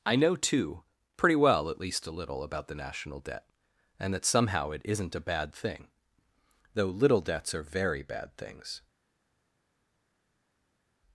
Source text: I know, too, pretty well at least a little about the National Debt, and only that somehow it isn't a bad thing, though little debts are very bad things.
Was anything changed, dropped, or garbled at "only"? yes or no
yes